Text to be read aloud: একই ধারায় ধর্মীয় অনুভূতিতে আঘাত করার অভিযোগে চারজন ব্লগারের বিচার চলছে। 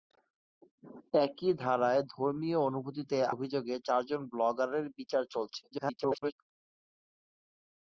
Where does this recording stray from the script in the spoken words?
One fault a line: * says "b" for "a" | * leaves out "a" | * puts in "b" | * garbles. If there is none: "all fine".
* leaves out "আঘাত করার"
* garbles